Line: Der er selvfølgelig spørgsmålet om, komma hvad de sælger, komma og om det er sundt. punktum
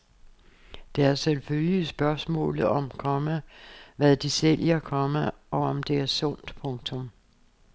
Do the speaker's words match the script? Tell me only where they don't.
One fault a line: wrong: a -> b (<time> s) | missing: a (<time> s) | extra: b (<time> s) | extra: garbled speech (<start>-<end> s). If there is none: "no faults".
no faults